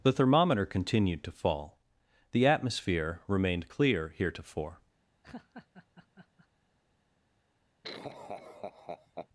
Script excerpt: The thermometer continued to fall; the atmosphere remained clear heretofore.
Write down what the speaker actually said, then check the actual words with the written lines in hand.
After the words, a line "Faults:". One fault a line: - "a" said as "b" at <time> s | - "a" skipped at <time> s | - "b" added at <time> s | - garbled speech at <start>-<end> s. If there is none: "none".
The thermometer continued to fall; the atmosphere remained clear heretofore.
Faults:
none